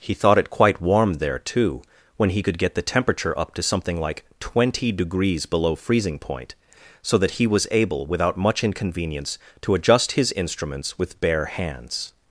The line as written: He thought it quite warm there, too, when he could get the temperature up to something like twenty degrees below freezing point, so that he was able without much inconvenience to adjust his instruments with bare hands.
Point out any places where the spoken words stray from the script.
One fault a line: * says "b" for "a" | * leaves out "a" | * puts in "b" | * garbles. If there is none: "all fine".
all fine